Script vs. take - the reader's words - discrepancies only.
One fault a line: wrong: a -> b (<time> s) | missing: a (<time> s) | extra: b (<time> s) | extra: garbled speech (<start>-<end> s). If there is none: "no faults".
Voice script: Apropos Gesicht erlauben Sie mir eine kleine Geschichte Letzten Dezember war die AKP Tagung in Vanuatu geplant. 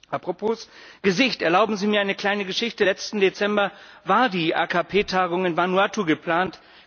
no faults